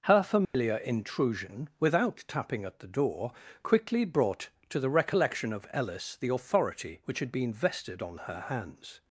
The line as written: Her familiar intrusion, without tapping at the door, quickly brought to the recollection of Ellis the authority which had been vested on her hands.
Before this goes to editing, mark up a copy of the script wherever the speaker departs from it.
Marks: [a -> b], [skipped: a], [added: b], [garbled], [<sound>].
Her familiar [dropout] intrusion, without tapping at the door, quickly brought to the recollection of Ellis the authority which had been vested on her hands.